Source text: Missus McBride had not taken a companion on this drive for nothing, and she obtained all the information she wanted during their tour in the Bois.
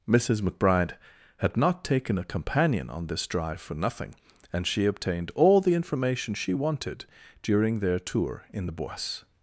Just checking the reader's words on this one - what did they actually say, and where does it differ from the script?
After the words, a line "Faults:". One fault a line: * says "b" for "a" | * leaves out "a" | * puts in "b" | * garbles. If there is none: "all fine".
Missus McBride had not taken a companion on this drive for nothing, and she obtained all the information she wanted during their tour in the Bois.
Faults:
all fine